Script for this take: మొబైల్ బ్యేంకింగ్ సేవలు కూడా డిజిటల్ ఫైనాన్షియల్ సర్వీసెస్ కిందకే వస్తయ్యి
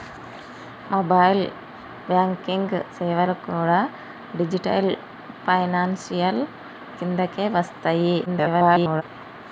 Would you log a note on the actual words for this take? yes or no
yes